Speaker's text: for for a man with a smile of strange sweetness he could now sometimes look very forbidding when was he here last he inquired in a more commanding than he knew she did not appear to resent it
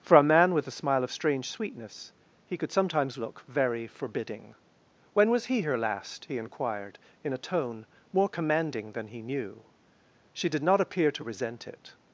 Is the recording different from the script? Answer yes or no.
yes